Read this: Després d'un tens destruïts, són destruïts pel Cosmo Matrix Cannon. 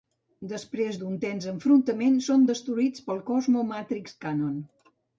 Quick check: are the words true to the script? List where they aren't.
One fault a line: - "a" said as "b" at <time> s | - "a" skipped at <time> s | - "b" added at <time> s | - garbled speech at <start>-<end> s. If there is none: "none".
- "destruïts" said as "enfrontament" at 1.5 s